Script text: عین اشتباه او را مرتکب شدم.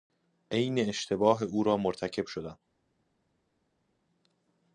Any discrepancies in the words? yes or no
no